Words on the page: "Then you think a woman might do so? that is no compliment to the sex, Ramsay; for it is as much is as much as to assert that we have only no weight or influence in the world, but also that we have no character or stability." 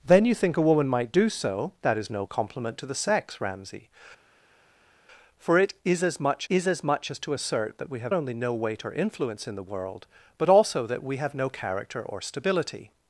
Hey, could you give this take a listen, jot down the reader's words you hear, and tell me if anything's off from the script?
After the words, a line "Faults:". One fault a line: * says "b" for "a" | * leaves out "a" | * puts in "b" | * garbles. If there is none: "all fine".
"Then you think a woman might do so? that is no compliment to the sex, Ramsay; for it is as much is as much as to assert that we have only no weight or influence in the world, but also that we have no character or stability."
Faults:
all fine